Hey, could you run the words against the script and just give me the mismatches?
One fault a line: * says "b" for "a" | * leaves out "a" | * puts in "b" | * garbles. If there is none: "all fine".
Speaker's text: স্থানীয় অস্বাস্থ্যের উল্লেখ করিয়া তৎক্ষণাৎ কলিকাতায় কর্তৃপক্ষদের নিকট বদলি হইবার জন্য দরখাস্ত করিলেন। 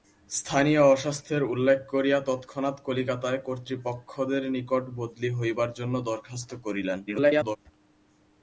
* garbles